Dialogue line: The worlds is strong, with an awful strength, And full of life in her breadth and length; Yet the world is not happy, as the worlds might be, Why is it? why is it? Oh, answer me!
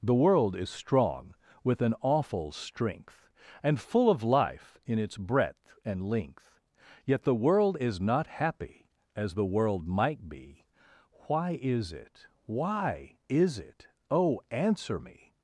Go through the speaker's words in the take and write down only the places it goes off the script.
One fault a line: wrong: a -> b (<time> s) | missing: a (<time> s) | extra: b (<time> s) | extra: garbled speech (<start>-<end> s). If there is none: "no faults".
wrong: worlds -> world (0.1 s)
wrong: her -> its (5.0 s)
wrong: worlds -> world (9.4 s)